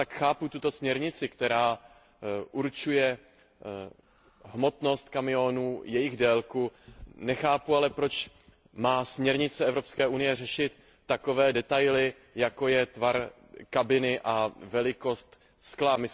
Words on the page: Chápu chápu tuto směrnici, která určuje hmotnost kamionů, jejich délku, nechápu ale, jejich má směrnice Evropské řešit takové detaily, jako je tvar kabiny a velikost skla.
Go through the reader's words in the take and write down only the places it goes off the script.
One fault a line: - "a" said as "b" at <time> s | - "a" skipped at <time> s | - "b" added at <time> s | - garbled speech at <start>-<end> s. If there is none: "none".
- "chápu" skipped at 0.5 s
- "jejich" said as "proč" at 7.9 s
- "unie" added at 10.1 s